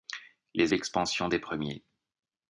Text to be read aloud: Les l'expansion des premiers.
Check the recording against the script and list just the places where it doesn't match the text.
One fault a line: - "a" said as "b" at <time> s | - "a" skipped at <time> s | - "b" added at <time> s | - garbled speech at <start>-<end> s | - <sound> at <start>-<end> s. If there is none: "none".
none